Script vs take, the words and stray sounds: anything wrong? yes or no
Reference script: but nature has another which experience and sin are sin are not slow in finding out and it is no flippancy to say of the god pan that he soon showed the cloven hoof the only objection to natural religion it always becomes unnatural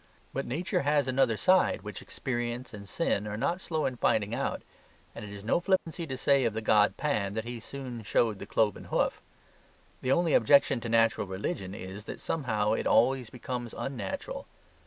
yes